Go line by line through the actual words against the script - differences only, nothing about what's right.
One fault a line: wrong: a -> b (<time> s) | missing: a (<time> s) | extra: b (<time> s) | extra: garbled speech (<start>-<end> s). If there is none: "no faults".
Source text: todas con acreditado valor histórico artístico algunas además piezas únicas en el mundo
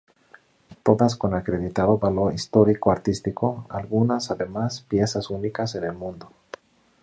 no faults